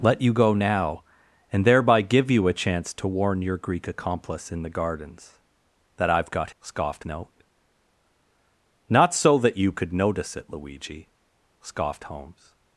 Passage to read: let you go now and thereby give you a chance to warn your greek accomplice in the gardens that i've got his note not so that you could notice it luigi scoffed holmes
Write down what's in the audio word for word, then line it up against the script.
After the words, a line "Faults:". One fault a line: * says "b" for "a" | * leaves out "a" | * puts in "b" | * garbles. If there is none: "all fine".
let you go now and thereby give you a chance to warn your greek accomplice in the gardens that i've got scoffed note not so that you could notice it luigi scoffed holmes
Faults:
* says "scoffed" for "his"